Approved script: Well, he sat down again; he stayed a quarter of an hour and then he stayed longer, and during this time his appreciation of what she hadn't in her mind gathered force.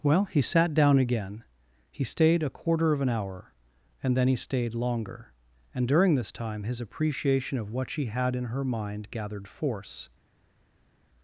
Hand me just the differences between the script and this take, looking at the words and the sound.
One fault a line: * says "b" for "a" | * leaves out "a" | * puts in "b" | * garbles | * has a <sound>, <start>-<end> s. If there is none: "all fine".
* says "had" for "hadn't"